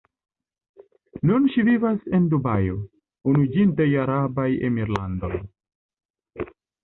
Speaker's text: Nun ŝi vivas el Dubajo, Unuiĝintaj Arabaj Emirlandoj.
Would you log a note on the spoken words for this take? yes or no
yes